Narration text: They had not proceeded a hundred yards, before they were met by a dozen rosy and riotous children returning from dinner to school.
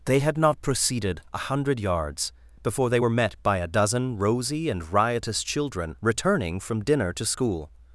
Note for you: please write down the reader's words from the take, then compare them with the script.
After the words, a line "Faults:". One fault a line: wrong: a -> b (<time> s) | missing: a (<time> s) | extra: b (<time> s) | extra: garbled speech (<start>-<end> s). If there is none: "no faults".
They had not proceeded a hundred yards, before they were met by a dozen rosy and riotous children returning from dinner to school.
Faults:
no faults